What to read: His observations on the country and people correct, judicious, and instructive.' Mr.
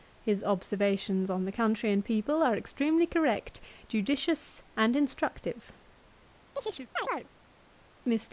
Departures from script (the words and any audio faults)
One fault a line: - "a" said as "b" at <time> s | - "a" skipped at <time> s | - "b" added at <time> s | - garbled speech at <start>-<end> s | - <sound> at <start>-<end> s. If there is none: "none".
- "are extremely" added at 2.4 s
- chirp at 6.6-7.3 s